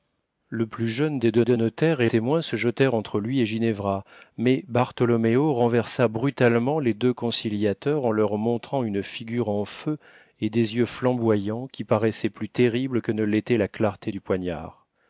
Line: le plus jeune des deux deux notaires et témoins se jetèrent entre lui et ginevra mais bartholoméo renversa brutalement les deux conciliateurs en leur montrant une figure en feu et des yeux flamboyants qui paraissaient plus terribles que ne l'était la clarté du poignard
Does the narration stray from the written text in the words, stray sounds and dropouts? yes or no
no